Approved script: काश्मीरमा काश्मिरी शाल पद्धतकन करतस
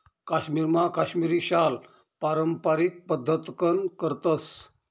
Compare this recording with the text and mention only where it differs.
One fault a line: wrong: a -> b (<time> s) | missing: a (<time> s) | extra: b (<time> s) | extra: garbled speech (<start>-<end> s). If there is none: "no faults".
extra: पारम्पारिक (2.2 s)